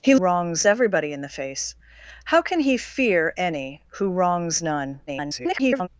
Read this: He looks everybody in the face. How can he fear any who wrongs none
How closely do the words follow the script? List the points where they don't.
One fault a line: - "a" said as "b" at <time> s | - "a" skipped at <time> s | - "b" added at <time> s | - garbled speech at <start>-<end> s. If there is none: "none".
- "looks" said as "wrongs" at 0.1 s
- garbled speech at 5.1-5.9 s